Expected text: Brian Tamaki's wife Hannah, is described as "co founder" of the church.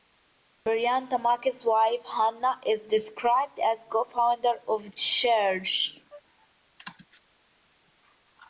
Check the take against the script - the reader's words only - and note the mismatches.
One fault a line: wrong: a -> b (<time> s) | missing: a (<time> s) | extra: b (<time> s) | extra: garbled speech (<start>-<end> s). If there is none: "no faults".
missing: the (4.9 s)